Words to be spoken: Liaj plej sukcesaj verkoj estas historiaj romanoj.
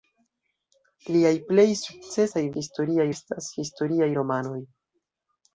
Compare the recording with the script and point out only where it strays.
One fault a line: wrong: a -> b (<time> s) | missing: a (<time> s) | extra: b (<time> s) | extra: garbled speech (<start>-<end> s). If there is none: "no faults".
wrong: verkoj -> historiaj (2.6 s)